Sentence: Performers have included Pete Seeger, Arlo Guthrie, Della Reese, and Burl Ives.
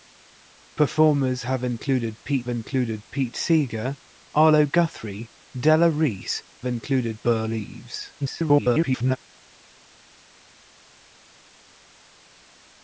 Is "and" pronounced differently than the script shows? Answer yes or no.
yes